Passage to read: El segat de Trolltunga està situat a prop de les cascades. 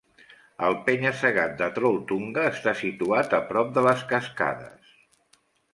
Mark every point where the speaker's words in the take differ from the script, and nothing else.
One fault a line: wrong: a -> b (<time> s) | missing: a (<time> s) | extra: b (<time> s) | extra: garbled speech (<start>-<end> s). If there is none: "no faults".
extra: penya (0.9 s)